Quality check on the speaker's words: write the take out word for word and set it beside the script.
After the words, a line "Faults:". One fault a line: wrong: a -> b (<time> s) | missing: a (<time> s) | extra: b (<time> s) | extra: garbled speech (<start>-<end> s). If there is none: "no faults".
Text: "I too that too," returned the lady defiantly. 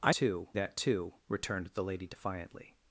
"I too that too," returned the lady defiantly.
Faults:
no faults